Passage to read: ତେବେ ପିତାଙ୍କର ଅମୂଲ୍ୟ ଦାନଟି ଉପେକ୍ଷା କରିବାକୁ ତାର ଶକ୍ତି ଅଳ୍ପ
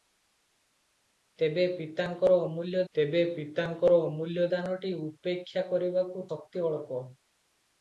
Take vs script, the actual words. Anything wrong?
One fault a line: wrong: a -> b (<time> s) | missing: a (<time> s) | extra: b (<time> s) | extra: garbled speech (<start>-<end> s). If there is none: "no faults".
extra: ତେବେ ପିତାଙ୍କର ଅମୂଲ୍ୟ (3.0 s)
missing: ତାର (6.3 s)